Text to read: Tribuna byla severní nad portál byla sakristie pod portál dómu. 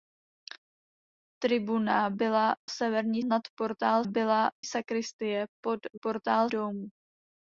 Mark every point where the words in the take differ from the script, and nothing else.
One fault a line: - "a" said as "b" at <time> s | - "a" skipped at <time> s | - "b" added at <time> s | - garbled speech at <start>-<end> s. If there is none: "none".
none